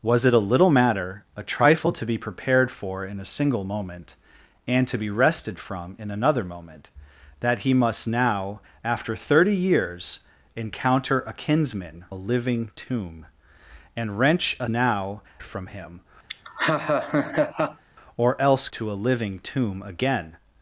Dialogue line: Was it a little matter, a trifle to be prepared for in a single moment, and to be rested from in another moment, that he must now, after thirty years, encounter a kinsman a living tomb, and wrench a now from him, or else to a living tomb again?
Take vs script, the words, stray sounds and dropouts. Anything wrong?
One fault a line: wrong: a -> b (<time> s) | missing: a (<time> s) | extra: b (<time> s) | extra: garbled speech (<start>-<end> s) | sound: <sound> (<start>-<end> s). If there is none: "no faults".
sound: laugh (16.3-17.8 s)